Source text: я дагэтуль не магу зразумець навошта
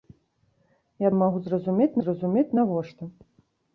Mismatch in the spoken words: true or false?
true